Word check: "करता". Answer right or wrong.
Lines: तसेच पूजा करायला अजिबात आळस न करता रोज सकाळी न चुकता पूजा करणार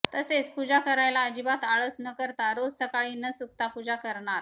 right